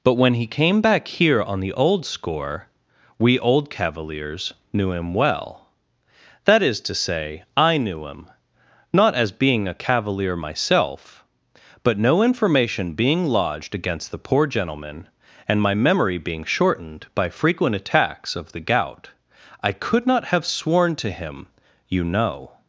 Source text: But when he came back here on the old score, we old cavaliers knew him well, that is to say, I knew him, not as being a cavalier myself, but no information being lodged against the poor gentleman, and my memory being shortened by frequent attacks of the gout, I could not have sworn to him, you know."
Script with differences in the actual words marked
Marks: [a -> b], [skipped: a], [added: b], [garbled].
But when he came back here on the old score, we old cavaliers knew him well, that is to say, I knew him, not as being a cavalier myself, but no information being lodged against the poor gentleman, and my memory being shortened by frequent attacks of the gout, I could not have sworn to him, you know."